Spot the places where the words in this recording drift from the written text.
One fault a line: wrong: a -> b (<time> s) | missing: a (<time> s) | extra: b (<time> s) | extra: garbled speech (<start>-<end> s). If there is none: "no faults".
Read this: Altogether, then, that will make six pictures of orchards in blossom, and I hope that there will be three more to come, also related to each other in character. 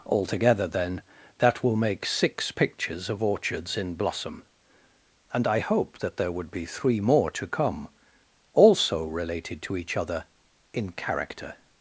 wrong: will -> would (6.3 s)